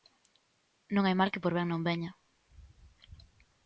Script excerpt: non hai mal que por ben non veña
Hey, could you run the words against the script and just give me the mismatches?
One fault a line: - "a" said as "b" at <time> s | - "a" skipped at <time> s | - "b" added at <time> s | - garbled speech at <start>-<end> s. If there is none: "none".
none